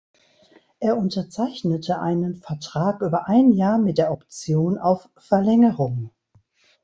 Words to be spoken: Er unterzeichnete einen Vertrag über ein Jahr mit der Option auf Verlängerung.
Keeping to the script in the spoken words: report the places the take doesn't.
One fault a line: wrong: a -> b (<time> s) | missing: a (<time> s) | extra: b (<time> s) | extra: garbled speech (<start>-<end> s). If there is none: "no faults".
no faults